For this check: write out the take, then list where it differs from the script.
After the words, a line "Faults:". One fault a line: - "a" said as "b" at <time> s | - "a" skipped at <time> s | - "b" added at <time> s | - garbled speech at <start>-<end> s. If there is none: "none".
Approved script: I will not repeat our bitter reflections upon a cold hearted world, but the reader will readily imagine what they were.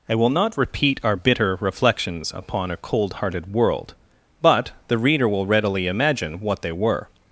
I will not repeat our bitter reflections upon a cold hearted world, but the reader will readily imagine what they were.
Faults:
none